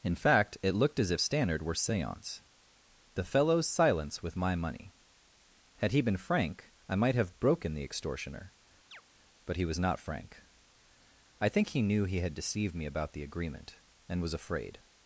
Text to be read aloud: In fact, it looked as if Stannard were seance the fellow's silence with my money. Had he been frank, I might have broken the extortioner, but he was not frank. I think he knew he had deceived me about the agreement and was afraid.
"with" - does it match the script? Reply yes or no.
yes